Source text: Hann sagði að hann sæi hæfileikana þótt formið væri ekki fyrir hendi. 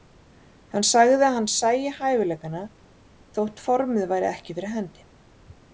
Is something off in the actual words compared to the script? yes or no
no